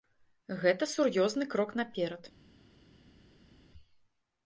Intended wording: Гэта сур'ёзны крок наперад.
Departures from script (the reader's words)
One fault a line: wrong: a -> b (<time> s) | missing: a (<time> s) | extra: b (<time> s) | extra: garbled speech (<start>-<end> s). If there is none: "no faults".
no faults